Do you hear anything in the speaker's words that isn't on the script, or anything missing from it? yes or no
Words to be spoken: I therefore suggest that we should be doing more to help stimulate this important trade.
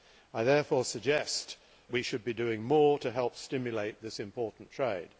yes